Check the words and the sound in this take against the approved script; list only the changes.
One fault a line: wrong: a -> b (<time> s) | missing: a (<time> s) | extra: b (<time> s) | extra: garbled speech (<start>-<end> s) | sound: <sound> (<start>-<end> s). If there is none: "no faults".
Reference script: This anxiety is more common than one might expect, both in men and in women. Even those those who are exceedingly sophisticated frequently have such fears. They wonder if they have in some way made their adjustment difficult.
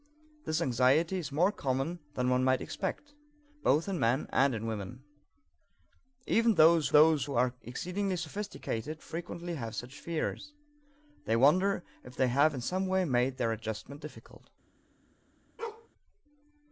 sound: bark (15.6-15.9 s)